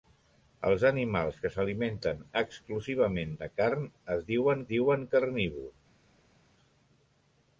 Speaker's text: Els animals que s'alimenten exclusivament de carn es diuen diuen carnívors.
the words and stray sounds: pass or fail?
pass